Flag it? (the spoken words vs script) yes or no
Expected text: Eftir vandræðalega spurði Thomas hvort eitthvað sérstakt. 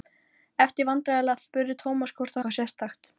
no